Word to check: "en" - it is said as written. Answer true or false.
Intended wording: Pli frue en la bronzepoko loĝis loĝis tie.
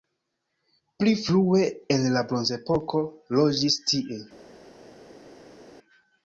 true